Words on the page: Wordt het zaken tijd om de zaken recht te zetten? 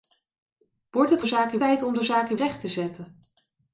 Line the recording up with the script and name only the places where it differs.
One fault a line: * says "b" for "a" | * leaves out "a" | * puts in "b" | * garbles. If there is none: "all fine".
all fine